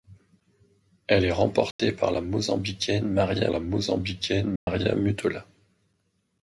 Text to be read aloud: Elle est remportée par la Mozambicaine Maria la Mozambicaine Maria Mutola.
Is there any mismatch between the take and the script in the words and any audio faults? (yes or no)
yes